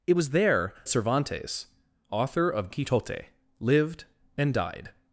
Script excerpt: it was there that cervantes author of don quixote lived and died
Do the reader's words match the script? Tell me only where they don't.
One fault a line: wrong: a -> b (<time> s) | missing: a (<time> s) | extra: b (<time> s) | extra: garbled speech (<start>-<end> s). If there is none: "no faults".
missing: that (0.7 s)
missing: don (2.7 s)